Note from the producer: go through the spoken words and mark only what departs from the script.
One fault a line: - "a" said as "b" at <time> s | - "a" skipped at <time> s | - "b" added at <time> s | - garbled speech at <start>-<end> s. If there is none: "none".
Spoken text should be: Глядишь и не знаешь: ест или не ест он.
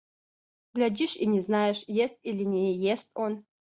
none